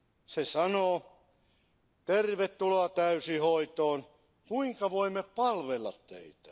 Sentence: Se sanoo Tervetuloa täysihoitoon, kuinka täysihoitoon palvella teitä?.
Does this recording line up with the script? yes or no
no